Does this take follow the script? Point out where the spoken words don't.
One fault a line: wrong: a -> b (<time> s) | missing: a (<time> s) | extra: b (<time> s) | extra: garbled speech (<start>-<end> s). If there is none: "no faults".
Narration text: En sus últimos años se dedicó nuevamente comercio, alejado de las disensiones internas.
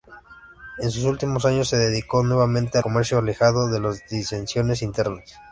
no faults